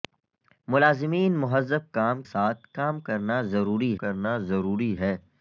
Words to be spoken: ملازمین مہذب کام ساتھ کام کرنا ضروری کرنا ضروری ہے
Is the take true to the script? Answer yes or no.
yes